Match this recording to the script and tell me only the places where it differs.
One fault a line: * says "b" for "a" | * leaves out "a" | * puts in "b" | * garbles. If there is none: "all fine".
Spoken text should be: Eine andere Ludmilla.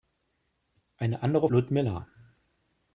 all fine